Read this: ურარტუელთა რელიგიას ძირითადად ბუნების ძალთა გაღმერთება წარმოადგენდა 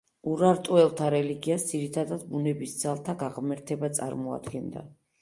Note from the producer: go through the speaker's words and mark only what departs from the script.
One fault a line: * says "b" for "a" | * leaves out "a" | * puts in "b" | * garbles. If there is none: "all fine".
all fine